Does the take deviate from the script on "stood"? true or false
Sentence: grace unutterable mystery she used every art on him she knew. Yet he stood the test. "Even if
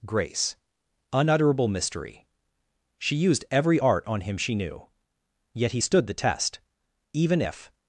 false